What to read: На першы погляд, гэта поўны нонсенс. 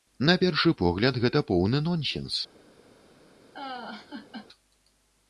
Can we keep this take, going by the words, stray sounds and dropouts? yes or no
no